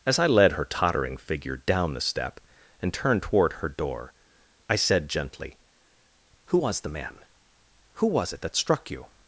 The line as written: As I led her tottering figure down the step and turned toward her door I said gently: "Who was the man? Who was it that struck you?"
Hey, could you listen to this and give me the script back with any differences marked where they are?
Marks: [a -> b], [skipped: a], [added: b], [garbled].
As I led her tottering figure down the step and turned toward her door I said gently: "Who was the man? Who was it that struck you?"